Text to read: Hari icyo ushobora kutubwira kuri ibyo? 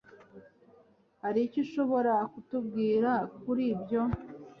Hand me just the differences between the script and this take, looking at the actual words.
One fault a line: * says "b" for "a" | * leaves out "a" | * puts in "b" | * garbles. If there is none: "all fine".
all fine